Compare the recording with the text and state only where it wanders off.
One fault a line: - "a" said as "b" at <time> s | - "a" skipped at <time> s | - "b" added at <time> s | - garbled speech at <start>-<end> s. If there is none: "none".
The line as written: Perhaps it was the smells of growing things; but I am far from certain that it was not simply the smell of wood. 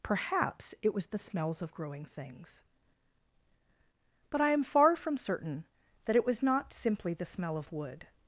none